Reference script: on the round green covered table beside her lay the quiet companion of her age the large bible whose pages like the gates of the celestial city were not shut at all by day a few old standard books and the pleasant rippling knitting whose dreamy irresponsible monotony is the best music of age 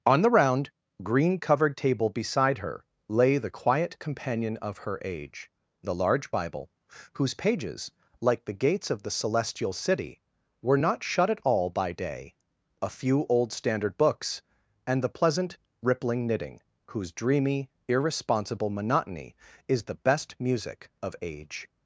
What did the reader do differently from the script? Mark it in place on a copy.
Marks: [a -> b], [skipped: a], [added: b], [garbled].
on the round green covered table beside her lay the quiet companion of her age the large bible whose pages like the gates of the celestial city were not shut at all by day a few old standard books and the pleasant rippling knitting whose dreamy irresponsible monotony is the best music of age